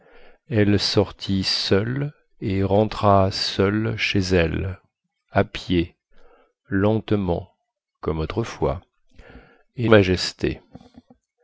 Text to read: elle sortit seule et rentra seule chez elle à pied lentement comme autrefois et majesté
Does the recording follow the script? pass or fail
pass